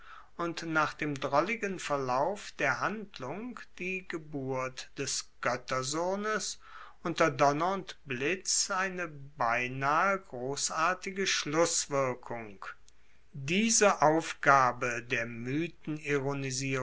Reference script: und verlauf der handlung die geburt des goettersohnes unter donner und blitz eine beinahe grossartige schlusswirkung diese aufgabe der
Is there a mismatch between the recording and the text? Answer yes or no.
yes